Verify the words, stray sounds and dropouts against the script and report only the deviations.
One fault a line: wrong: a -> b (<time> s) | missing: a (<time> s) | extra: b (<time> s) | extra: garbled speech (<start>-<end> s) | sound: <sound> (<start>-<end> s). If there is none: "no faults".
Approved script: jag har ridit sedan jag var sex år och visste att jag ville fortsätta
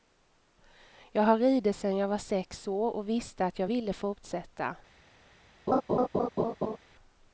sound: laugh (5.7-6.8 s)